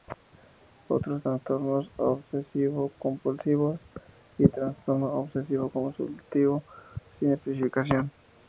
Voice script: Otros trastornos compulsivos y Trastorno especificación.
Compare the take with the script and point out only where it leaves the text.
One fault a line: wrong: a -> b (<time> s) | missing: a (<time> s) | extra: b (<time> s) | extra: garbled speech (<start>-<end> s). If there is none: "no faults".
extra: obsesivo (2.0 s)
extra: obsesivo compulsivo sin (5.1 s)